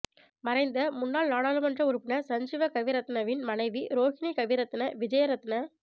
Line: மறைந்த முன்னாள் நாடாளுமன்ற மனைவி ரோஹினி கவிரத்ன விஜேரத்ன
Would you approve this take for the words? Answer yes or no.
no